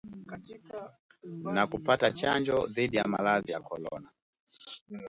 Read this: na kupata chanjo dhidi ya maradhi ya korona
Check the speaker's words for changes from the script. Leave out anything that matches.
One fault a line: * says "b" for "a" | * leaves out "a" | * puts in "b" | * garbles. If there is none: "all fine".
all fine